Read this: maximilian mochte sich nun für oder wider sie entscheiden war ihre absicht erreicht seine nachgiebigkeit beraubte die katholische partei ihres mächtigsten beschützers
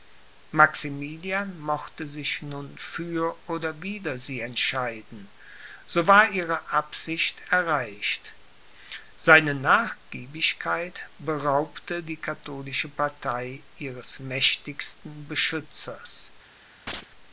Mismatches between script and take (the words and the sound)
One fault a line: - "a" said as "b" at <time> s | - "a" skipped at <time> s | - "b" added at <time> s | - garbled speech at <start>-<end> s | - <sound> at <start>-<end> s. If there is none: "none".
- "so" added at 5.8 s
- chirp at 16.9-17.1 s